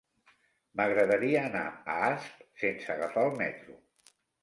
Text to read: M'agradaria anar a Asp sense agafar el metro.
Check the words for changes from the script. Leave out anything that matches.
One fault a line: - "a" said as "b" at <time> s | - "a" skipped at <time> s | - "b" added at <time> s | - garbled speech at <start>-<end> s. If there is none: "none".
none